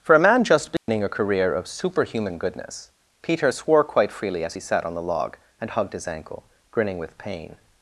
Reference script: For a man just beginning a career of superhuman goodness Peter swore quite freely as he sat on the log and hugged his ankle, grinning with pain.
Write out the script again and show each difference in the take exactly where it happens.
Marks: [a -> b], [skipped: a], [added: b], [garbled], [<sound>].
For a man just beginning [dropout] a career of superhuman goodness Peter swore quite freely as he sat on the log and hugged his ankle, grinning with pain.